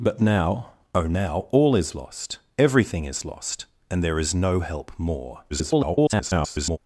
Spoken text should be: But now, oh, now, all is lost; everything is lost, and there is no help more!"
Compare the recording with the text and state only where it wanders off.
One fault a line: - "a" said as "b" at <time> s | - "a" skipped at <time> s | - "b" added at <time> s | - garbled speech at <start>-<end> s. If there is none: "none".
- garbled speech at 5.5-6.8 s